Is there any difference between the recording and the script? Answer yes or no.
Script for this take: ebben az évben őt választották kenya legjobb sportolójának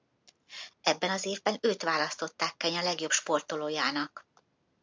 no